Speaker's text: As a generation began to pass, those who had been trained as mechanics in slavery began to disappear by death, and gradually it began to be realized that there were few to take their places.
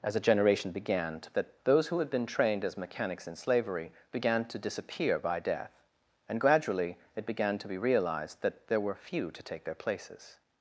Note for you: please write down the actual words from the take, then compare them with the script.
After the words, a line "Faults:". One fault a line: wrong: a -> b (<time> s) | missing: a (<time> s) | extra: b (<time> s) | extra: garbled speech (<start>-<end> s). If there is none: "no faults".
As a generation began to that, those who had been trained as mechanics in slavery began to disappear by death, and gradually it began to be realized that there were few to take their places.
Faults:
wrong: pass -> that (1.3 s)